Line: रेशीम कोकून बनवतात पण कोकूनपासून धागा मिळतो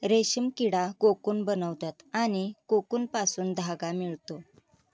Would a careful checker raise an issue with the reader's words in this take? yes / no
yes